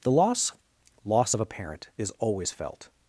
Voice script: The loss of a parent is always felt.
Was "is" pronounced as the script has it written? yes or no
yes